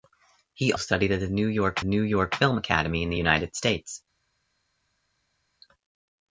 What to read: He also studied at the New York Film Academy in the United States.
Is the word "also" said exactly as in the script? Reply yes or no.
no